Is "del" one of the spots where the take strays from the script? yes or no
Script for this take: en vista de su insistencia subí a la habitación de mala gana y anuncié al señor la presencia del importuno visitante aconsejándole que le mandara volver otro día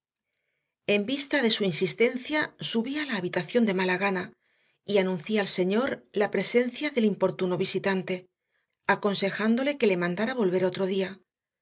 no